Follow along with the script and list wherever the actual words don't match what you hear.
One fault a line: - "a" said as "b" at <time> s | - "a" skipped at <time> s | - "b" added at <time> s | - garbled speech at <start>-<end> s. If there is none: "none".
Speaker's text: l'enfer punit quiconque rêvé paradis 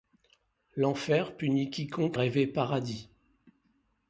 none